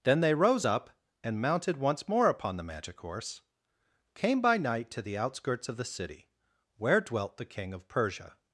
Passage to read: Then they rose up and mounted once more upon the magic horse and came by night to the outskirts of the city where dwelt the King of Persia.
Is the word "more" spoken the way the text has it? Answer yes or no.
yes